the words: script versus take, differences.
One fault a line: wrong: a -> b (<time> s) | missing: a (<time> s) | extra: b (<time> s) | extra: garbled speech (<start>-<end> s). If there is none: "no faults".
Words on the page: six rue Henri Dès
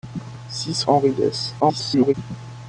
missing: rue (0.8 s)
extra: garbled speech (1.6-2.1 s)